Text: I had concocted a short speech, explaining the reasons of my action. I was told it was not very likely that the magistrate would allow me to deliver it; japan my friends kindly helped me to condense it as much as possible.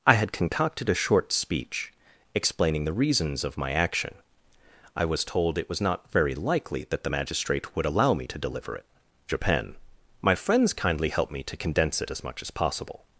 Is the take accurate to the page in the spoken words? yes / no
yes